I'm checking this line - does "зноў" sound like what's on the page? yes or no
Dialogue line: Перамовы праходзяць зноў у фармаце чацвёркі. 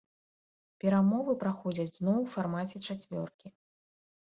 yes